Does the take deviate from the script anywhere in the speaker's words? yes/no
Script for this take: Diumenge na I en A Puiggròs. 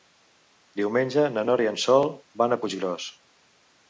yes